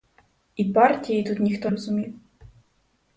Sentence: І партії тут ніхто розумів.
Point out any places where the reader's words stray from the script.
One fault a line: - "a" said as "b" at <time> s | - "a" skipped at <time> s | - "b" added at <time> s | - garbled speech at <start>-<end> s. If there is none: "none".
none